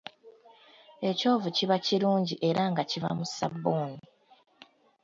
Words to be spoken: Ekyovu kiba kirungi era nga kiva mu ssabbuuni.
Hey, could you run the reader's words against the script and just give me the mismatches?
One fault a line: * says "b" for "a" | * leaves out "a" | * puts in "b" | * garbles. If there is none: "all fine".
all fine